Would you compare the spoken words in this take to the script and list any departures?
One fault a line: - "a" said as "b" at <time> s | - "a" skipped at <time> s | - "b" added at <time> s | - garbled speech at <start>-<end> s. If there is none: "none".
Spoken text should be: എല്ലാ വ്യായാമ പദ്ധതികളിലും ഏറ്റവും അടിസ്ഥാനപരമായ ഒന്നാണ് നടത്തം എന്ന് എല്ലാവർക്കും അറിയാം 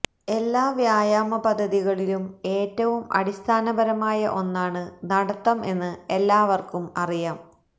none